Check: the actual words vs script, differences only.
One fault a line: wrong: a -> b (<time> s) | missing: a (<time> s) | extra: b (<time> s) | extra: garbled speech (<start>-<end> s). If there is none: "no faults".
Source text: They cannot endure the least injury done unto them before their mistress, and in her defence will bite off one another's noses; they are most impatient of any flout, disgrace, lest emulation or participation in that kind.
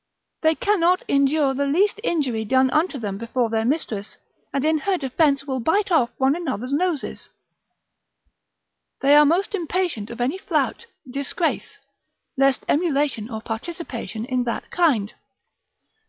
no faults